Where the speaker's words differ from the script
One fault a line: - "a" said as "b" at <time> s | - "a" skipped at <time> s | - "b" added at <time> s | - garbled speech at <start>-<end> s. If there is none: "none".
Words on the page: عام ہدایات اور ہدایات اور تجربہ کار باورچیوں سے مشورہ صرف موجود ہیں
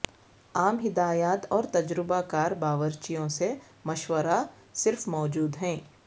- "ہدایات اور" skipped at 1.6 s